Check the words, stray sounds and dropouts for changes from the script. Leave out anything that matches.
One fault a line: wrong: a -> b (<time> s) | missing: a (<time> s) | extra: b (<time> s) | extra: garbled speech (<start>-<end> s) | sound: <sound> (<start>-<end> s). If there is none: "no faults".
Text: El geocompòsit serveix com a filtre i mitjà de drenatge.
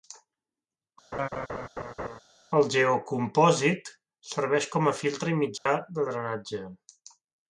sound: laugh (1.1-2.2 s)
sound: dropout (5.6-5.7 s)